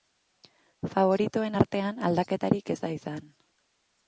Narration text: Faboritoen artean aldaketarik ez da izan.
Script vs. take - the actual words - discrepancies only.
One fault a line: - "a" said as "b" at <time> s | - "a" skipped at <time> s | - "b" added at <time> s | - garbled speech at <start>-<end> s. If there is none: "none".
none